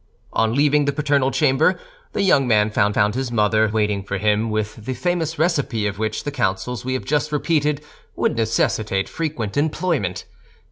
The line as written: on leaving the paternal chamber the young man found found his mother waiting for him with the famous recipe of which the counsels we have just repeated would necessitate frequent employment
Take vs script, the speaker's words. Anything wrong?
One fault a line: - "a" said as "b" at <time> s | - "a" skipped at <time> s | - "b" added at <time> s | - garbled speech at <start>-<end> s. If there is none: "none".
none